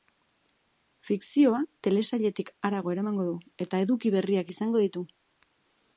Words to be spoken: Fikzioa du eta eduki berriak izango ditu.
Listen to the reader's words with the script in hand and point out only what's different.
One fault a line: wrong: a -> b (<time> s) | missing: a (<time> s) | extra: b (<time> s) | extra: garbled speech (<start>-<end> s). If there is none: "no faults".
extra: telesailetik harago eramango (1.9 s)